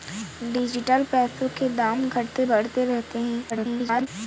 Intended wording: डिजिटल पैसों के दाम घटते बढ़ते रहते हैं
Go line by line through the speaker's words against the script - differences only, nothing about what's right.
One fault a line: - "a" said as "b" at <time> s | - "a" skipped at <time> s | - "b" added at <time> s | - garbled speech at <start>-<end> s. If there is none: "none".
- garbled speech at 3.5-4.1 s